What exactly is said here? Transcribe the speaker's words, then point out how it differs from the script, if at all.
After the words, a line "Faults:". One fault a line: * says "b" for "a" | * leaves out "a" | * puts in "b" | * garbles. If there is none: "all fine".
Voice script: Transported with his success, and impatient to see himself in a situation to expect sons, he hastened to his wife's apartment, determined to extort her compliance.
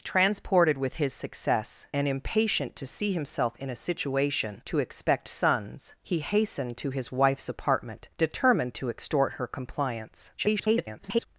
Transported with his success, and impatient to see himself in a situation to expect sons, he hastened to his wife's apartment, determined to extort her compliance. [garbled]
Faults:
* garbles